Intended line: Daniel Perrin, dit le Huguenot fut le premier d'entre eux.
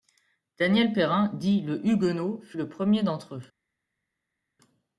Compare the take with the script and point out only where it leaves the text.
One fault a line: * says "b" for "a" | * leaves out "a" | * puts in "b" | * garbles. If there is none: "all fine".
all fine